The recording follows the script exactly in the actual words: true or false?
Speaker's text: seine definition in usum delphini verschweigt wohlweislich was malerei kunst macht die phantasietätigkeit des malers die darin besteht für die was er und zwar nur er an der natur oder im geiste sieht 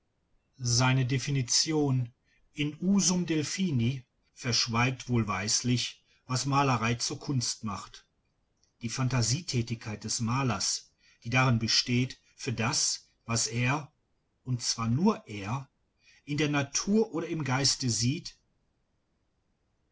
false